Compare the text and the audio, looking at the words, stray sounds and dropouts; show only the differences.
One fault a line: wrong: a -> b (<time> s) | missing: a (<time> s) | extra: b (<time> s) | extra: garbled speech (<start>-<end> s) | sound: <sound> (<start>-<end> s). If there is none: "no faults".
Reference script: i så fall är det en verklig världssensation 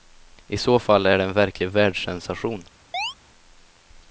sound: chirp (2.9-3.1 s)